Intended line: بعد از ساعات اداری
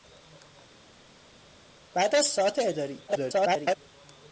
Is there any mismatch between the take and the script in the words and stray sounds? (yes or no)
yes